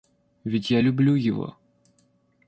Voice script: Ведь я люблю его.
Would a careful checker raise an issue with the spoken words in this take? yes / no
no